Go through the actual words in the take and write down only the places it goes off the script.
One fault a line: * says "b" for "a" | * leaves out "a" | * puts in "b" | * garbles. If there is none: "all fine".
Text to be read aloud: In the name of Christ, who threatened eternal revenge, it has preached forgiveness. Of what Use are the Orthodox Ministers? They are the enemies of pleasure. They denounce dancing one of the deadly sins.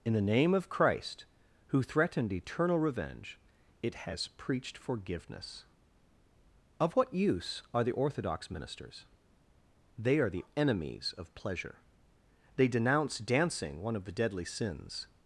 all fine